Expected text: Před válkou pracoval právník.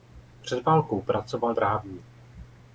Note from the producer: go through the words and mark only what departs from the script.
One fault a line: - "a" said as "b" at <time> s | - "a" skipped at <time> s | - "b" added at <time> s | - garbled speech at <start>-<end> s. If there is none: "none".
none